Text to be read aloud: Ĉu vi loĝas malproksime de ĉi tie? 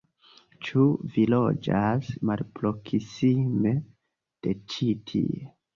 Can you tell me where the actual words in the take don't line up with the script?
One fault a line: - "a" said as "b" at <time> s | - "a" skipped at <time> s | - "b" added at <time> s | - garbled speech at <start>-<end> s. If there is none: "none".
none